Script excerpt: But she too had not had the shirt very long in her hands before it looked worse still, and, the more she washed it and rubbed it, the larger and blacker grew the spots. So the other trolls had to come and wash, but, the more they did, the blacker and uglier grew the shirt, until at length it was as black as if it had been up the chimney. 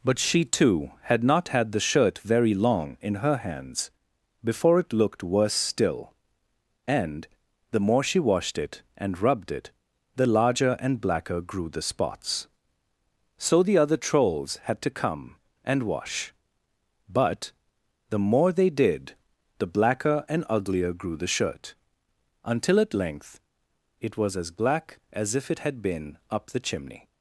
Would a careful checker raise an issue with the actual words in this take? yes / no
no